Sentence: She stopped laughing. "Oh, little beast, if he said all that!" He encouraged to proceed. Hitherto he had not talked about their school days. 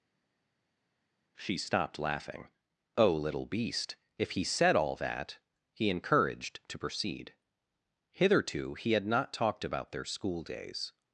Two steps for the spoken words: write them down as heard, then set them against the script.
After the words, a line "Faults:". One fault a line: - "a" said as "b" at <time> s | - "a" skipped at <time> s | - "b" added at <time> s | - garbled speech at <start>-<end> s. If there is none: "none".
She stopped laughing. "Oh, little beast, if he said all that!" He encouraged to proceed. Hitherto he had not talked about their school days.
Faults:
none